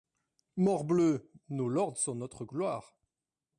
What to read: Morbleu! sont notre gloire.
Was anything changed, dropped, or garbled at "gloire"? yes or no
no